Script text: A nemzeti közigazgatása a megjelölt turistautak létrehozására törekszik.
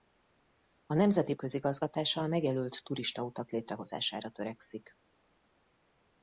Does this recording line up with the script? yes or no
yes